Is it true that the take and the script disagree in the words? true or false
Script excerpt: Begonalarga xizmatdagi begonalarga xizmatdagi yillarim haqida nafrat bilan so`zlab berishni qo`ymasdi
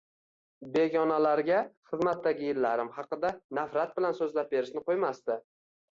true